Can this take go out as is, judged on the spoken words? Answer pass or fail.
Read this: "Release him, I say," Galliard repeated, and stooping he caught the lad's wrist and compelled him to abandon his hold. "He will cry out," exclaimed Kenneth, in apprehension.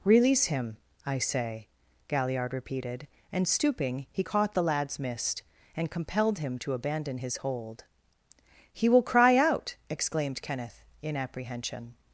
fail